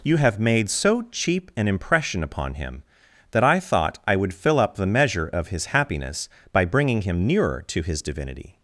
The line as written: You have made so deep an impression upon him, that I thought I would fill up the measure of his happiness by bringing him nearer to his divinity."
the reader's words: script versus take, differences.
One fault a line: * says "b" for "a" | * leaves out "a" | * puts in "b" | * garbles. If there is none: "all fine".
* says "cheap" for "deep"